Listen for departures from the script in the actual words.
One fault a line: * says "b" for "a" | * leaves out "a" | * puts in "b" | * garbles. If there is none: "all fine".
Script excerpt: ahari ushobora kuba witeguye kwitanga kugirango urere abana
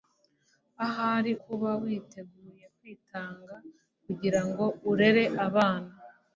* leaves out "ushobora"